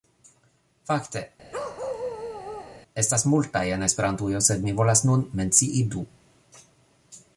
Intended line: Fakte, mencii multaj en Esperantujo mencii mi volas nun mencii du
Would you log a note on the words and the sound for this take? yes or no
yes